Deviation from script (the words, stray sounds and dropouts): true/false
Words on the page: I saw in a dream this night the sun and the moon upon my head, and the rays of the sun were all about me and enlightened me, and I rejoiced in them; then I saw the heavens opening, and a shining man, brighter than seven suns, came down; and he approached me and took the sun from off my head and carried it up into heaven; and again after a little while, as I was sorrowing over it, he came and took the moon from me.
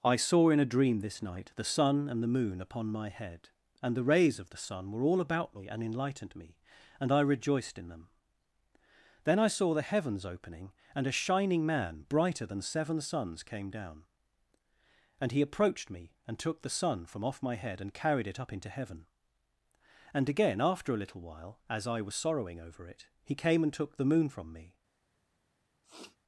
true